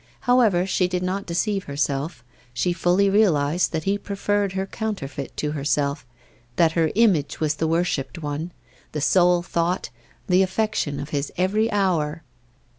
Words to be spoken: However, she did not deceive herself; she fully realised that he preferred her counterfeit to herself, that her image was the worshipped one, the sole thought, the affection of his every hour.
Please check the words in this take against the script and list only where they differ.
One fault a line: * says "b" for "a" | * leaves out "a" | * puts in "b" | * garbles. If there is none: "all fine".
all fine